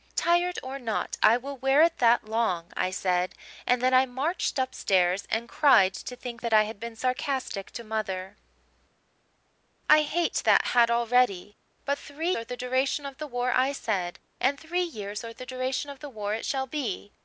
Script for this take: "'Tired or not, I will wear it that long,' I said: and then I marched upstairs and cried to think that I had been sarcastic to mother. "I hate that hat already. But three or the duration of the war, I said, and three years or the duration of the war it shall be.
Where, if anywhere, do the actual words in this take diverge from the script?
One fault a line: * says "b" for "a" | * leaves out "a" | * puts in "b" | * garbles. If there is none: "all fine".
all fine